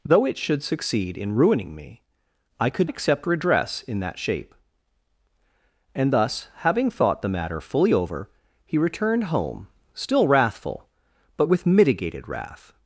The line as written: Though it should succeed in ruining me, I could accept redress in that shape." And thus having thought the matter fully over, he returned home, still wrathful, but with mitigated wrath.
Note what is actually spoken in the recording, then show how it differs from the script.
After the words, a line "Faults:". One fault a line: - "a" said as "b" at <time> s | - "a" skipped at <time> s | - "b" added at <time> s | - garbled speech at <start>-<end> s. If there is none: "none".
Though it should succeed in ruining me, I could accept redress in that shape." And thus having thought the matter fully over, he returned home, still wrathful, but with mitigated wrath.
Faults:
none